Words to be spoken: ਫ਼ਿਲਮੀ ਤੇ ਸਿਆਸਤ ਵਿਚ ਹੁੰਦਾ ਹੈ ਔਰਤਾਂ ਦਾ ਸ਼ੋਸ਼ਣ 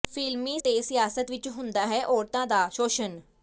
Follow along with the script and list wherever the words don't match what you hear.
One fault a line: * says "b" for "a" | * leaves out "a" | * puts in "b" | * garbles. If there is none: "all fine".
all fine